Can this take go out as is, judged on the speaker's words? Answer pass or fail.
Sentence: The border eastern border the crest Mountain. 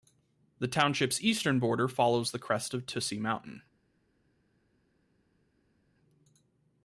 fail